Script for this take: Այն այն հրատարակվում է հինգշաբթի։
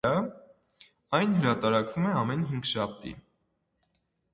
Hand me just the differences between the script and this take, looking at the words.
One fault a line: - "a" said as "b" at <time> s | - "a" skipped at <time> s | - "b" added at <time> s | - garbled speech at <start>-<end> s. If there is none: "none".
- "այն" skipped at 1.4 s
- "ամեն" added at 2.2 s